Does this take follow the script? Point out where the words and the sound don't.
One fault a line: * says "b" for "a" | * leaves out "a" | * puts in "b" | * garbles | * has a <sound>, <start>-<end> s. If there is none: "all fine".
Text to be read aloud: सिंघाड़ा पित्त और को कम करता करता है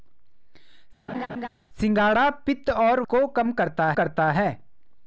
* has a laugh, 1.1-1.5 s